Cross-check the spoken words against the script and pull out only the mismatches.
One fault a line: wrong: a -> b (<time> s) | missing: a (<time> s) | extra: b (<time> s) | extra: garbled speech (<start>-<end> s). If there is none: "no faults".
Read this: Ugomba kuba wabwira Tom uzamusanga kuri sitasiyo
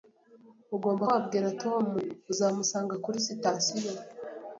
missing: kuba (1.0 s)